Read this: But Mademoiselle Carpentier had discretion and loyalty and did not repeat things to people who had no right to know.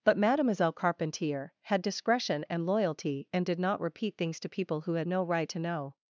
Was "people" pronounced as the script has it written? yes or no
yes